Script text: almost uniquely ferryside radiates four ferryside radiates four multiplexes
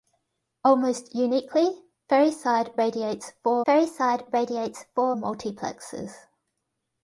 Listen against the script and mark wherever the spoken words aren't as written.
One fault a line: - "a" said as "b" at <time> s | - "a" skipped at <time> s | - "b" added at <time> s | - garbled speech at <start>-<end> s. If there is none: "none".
none